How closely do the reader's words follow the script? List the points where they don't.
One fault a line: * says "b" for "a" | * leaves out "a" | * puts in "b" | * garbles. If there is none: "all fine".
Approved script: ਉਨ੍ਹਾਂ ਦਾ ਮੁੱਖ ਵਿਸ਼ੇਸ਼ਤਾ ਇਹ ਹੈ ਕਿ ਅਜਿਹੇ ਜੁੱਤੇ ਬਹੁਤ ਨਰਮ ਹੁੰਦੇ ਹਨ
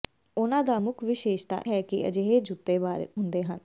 * leaves out "ਇਹ"
* leaves out "ਬਹੁਤ ਨਰਮ"